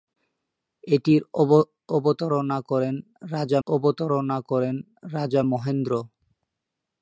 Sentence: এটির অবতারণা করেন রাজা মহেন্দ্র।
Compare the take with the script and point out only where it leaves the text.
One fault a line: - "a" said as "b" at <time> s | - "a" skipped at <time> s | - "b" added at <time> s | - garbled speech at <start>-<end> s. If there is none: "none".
- "অবতারণা করেন রাজা" added at 3.7 s